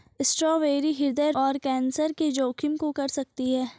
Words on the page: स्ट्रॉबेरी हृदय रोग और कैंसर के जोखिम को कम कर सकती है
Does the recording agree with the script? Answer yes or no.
no